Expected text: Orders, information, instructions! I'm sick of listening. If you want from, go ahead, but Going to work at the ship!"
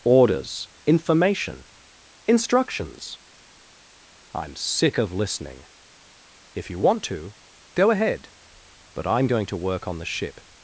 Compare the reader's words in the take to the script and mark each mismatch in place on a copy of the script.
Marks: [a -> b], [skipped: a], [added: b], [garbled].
Orders, information, instructions! I'm sick of listening. If you want [from, -> to] go ahead, but [added: I'm] Going to work [at -> on] the ship!"